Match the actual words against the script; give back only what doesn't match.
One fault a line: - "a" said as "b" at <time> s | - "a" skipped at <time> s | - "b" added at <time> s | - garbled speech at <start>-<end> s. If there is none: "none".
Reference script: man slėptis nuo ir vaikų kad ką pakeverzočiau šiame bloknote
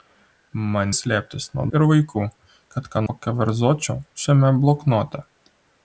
none